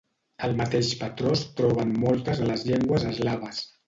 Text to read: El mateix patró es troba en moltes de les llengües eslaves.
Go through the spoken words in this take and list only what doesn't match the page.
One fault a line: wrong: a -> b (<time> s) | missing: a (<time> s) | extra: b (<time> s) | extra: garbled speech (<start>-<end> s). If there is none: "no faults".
no faults